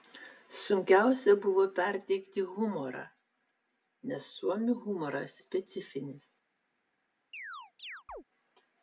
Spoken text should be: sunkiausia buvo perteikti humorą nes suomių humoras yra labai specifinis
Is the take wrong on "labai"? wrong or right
wrong